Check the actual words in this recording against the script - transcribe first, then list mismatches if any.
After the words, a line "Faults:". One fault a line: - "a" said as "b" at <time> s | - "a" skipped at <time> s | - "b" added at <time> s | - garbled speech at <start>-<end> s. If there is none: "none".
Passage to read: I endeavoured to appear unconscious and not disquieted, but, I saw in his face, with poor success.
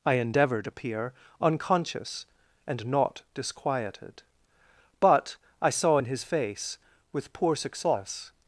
I endeavoured appear unconscious and not disquieted, but, I saw in his face, with poor success.
Faults:
- "to" skipped at 0.7 s